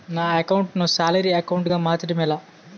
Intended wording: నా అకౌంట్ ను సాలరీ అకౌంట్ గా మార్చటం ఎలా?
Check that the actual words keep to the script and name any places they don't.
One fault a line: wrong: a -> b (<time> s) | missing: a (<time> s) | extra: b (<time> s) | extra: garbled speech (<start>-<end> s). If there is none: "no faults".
no faults